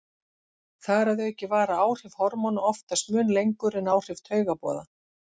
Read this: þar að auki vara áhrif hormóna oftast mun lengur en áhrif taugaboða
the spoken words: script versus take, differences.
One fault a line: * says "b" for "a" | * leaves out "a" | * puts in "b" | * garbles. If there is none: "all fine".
all fine